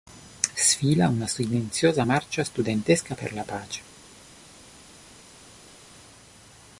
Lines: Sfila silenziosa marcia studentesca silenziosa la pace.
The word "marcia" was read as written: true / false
true